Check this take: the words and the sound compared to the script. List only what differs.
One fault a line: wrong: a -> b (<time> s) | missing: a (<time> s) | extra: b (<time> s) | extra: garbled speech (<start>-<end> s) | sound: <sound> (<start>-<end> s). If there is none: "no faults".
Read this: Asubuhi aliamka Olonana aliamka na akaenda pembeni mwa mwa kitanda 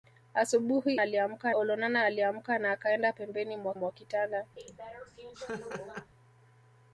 sound: laugh (4.6-6.1 s)